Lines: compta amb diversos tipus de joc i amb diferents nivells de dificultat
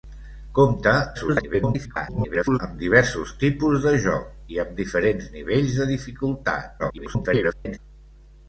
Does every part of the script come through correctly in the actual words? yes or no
no